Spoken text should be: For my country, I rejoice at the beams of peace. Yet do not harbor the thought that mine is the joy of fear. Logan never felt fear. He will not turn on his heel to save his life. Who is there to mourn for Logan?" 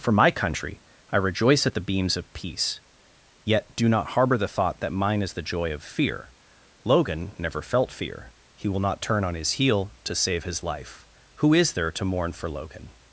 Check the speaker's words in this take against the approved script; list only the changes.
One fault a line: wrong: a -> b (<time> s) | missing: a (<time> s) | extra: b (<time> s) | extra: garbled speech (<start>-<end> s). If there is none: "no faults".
no faults